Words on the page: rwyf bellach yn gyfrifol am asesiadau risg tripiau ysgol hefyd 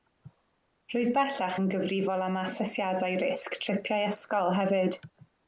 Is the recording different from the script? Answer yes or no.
no